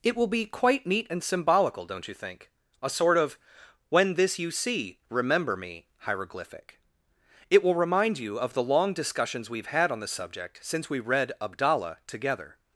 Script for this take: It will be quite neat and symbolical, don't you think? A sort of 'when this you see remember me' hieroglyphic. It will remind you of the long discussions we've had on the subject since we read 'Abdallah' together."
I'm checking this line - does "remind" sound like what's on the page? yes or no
yes